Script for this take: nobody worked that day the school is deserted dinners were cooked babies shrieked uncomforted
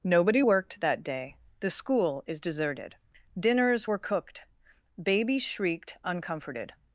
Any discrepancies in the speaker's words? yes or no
no